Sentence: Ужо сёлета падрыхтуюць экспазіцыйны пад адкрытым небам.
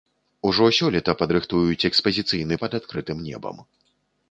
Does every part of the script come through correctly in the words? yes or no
yes